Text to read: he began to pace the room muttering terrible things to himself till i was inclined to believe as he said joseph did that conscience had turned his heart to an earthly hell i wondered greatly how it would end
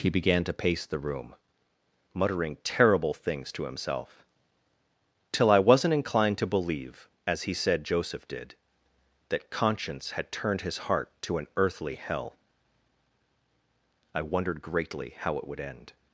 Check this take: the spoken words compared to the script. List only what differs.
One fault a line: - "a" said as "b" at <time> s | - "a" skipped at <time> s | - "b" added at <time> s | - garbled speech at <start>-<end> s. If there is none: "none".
- "was" said as "wasn't" at 5.6 s